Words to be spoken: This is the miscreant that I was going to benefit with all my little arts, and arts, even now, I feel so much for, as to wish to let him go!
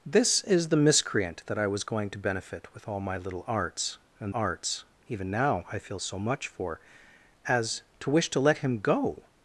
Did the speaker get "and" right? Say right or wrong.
right